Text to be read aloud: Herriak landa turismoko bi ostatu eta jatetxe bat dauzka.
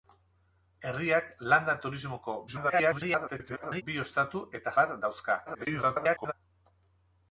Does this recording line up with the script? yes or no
no